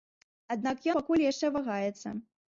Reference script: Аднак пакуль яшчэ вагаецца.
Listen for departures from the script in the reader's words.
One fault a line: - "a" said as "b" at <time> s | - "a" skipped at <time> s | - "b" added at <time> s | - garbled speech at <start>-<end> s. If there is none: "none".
none